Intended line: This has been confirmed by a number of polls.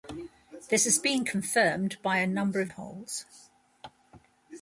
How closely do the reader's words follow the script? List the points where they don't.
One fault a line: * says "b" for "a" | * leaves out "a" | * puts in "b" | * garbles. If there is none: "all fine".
all fine